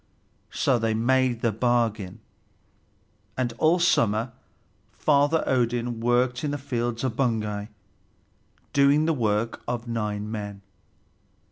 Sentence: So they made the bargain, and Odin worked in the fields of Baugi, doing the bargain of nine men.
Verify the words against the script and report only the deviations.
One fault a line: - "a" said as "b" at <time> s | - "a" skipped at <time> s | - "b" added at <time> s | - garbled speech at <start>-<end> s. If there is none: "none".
- "all summer Father" added at 3.6 s
- "bargain" said as "work" at 9.1 s